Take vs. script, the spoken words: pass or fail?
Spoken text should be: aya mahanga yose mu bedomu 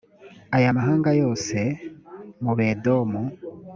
pass